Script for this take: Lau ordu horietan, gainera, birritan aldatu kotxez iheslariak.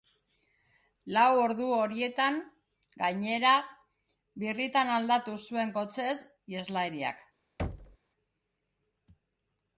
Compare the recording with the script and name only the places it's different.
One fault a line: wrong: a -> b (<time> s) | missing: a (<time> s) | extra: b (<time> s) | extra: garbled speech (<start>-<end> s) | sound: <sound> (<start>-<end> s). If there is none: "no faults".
extra: zuen (5.5 s)
sound: thud (7.6-8.0 s)